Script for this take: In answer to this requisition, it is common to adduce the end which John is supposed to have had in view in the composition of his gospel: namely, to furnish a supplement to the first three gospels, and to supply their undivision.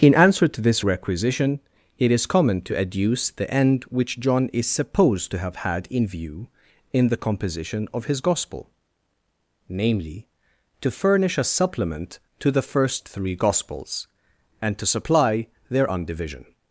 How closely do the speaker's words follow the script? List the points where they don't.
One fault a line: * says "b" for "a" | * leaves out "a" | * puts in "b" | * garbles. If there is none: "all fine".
all fine